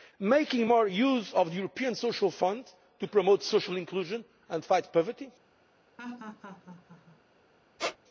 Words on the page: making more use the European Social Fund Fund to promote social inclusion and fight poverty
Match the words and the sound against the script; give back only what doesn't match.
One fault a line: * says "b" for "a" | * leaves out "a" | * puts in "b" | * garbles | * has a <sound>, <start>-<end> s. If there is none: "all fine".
* puts in "of"
* leaves out "Fund"
* has a laugh, 6.0-7.2 s
* has a squeak, 7.8-8.0 s